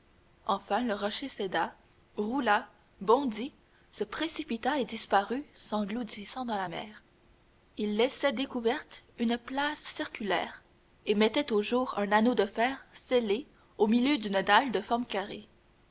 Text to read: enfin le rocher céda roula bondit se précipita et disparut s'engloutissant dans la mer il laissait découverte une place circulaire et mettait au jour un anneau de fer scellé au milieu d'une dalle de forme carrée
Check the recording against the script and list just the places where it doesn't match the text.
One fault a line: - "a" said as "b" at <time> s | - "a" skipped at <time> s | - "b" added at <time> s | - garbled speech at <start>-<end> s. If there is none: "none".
none